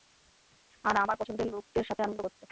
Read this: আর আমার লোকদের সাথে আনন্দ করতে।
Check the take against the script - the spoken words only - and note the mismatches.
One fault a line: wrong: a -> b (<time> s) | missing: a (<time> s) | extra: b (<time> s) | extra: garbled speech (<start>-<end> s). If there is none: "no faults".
extra: পছন্দের (1.2 s)